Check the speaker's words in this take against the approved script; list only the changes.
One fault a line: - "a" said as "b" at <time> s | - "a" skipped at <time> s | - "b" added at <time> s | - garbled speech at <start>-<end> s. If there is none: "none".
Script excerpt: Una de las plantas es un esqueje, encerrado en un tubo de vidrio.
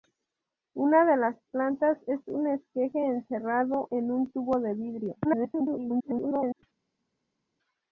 - garbled speech at 5.2-6.6 s